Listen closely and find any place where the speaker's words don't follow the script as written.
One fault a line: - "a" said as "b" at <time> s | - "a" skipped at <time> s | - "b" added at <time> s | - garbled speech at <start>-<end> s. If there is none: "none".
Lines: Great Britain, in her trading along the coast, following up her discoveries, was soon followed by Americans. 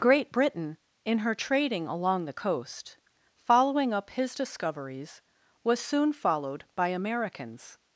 - "her" said as "his" at 4.1 s